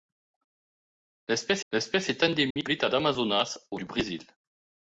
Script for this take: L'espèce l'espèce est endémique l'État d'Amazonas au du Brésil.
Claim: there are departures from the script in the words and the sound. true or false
true